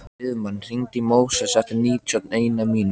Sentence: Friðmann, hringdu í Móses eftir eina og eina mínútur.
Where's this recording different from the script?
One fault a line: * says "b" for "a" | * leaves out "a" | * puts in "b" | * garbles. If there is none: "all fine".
* says "níutíu" for "eina"